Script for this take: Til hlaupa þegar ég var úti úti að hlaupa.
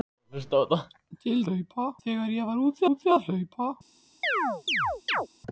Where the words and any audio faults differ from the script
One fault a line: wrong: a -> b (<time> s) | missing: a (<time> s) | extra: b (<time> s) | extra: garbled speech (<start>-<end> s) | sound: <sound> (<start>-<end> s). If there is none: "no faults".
sound: chirp (4.2-5.3 s)